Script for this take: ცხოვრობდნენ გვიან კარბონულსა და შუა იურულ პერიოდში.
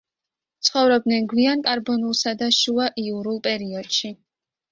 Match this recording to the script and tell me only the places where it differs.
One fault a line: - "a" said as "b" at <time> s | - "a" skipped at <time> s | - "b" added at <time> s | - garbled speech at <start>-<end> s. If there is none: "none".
none